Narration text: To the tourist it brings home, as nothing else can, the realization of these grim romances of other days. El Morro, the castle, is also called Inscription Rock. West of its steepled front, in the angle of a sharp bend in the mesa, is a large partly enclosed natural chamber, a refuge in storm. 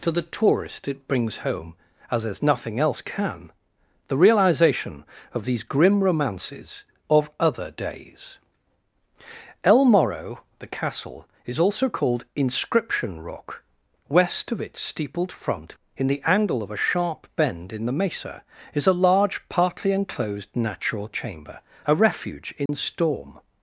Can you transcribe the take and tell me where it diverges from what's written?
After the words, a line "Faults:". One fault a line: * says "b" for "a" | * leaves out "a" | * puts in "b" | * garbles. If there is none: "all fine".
To the tourist it brings home, as as nothing else can, the realization of these grim romances of other days. El Morro, the castle, is also called Inscription Rock. West of its steepled front, in the angle of a sharp bend in the mesa, is a large partly enclosed natural chamber, a refuge in storm.
Faults:
* puts in "as"